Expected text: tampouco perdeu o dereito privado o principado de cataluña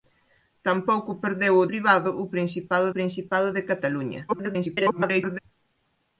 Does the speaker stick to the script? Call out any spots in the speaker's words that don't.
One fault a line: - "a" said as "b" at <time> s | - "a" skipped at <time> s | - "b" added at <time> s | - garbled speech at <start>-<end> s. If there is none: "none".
- "dereito" skipped at 1.7 s
- "principado" added at 3.0 s
- garbled speech at 4.3-5.4 s